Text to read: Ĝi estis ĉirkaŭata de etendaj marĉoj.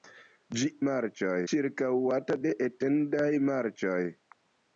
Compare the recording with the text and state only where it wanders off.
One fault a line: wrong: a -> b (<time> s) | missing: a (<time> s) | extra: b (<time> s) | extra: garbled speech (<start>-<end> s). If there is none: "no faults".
wrong: estis -> marĉoj (0.9 s)